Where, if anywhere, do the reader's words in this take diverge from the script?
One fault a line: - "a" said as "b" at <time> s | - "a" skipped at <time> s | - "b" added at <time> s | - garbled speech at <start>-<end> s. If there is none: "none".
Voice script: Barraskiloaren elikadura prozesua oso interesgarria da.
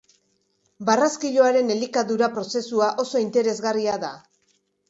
none